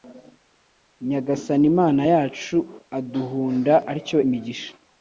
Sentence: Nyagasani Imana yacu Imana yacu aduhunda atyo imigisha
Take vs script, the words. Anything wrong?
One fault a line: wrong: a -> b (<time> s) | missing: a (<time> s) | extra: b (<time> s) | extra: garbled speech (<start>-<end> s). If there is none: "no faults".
missing: Imana yacu (2.6 s)